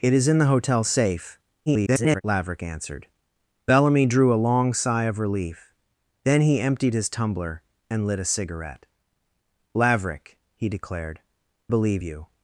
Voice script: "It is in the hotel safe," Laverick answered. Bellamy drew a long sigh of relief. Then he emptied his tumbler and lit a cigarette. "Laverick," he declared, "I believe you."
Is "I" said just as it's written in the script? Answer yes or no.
no